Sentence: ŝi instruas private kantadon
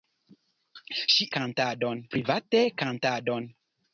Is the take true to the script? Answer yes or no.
no